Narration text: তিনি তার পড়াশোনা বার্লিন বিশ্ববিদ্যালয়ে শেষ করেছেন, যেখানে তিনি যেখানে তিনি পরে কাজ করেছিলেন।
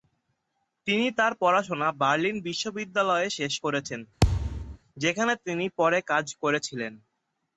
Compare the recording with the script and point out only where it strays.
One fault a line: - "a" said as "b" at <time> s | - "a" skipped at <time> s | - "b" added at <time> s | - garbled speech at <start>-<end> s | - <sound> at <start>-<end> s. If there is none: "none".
- thud at 4.2-4.8 s
- "যেখানে তিনি" skipped at 5.6 s